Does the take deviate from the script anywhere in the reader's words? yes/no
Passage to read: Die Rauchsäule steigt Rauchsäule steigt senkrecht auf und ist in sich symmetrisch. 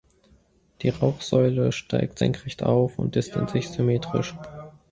yes